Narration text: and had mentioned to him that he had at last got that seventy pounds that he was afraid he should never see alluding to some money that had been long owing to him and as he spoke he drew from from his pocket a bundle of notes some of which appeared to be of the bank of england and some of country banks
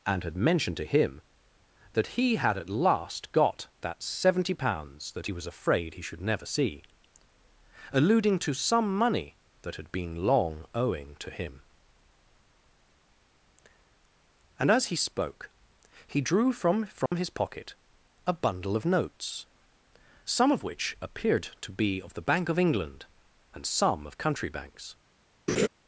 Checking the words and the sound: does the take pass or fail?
fail